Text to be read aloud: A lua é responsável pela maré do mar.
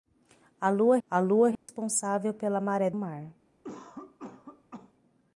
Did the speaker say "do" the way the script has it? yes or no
no